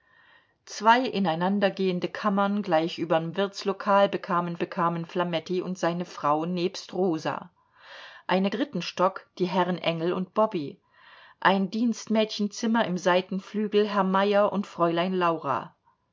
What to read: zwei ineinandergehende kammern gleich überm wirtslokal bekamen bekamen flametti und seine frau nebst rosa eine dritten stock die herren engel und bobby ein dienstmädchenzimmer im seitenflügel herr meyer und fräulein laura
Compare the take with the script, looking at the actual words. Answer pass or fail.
pass